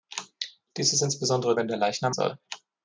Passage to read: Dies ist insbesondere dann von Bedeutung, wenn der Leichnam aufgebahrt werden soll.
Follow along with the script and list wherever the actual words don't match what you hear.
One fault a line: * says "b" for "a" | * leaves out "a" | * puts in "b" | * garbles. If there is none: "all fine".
* leaves out "dann von Bedeutung"
* leaves out "aufgebahrt werden"